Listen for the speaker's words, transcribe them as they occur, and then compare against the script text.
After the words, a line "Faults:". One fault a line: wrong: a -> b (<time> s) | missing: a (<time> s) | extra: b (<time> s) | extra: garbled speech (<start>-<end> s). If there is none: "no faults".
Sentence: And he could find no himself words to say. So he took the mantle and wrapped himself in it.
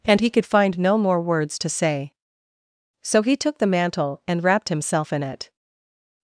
And he could find no more words to say. So he took the mantle and wrapped himself in it.
Faults:
wrong: himself -> more (1.0 s)